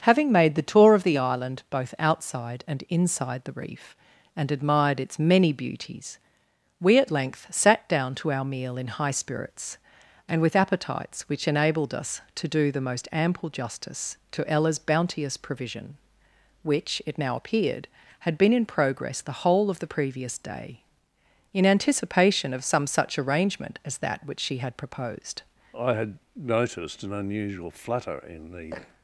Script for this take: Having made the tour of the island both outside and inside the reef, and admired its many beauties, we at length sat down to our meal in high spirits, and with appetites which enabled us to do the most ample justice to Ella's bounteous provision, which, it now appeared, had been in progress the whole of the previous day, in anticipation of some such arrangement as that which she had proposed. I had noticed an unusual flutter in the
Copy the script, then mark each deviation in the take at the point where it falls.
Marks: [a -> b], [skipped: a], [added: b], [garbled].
Having made the tour of the island both outside and inside the reef, and admired its many beauties, we at length sat down to our meal in high spirits, and with appetites which enabled us to do the most ample justice to Ella's bounteous provision, which, it now appeared, had been in progress the whole of the previous day, in anticipation of some such arrangement as that which she had proposed. I had noticed an unusual flutter in the